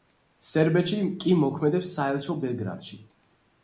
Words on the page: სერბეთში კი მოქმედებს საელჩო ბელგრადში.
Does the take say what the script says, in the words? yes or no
yes